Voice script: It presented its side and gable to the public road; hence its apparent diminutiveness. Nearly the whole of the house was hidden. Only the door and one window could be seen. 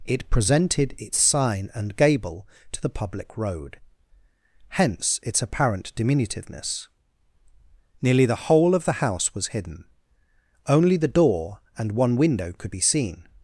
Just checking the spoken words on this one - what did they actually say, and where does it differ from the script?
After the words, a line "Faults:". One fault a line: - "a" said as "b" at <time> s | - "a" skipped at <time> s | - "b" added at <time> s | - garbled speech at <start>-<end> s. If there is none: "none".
It presented its sign and gable to the public road; hence its apparent diminutiveness. Nearly the whole of the house was hidden. Only the door and one window could be seen.
Faults:
- "side" said as "sign" at 1.2 s